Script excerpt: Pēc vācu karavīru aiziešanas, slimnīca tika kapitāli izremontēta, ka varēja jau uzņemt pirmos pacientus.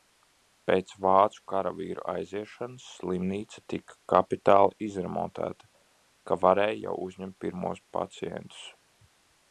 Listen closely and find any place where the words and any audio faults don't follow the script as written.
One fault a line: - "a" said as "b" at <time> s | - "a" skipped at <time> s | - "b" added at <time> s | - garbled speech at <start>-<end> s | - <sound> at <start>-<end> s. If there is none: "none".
none